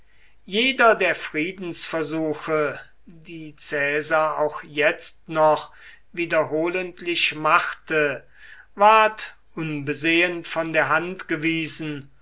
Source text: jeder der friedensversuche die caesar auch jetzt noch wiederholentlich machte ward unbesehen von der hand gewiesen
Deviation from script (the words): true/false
false